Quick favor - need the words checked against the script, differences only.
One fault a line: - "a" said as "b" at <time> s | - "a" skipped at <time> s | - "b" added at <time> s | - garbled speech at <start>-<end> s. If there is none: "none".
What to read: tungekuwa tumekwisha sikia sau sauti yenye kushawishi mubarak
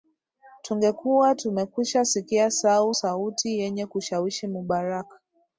none